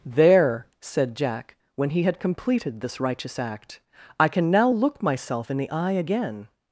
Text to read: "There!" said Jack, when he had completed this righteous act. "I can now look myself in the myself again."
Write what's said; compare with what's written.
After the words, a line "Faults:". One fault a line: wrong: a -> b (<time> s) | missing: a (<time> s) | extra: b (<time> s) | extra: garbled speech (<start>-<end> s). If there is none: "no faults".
"There!" said Jack, when he had completed this righteous act. "I can now look myself in the eye again."
Faults:
wrong: myself -> eye (5.7 s)